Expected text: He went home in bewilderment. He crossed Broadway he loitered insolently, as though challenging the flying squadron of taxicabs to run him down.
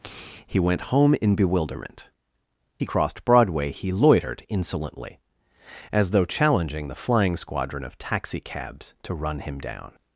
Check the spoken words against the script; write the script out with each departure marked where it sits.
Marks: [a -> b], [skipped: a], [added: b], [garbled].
He went home in bewilderment. He crossed Broadway he loitered insolently, as though challenging the flying squadron of taxicabs to run him down.